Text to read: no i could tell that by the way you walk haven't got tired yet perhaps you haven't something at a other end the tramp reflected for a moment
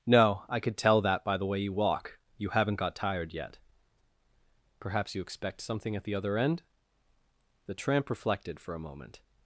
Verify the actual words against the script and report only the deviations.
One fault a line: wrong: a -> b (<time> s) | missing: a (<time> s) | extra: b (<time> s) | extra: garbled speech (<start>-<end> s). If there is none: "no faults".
extra: you (2.4 s)
wrong: haven't -> expect (5.2 s)
wrong: a -> the (6.0 s)